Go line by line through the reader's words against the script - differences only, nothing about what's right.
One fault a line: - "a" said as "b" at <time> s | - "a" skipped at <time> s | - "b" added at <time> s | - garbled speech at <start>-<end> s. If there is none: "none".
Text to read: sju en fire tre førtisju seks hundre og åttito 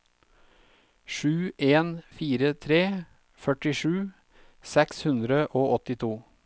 none